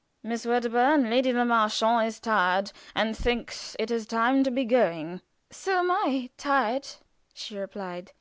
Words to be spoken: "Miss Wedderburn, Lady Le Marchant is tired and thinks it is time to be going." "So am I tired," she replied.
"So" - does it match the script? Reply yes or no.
yes